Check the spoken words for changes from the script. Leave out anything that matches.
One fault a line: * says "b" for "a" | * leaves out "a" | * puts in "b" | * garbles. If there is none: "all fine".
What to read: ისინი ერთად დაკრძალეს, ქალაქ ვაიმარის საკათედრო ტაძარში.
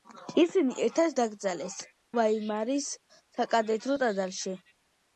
* leaves out "ქალაქ"